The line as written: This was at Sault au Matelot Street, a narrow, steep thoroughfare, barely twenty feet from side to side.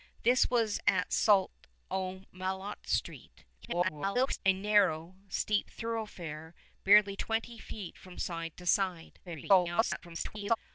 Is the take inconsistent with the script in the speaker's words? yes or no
yes